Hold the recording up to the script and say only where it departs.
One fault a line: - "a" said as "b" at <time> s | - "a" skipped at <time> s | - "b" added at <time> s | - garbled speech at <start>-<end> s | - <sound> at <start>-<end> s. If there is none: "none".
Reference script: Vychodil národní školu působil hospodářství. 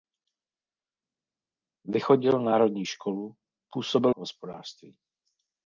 none